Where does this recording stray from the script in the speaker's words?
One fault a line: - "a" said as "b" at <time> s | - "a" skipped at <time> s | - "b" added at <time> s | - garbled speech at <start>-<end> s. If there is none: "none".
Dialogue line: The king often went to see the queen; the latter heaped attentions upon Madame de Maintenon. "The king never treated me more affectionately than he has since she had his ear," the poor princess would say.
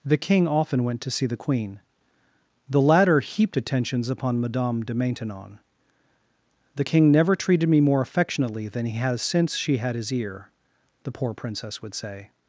none